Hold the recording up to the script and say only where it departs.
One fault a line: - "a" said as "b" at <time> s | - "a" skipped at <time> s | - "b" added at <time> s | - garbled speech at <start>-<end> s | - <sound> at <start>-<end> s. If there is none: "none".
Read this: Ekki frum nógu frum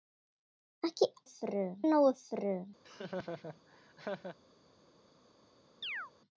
- laugh at 2.8-4.4 s
- chirp at 5.8-6.1 s